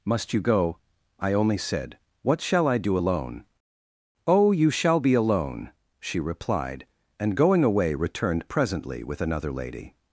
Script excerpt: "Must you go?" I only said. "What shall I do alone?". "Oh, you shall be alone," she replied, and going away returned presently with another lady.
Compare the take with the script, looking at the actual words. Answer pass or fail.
pass